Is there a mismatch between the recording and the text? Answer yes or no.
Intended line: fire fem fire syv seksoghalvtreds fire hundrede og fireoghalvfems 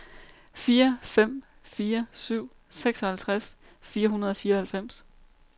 no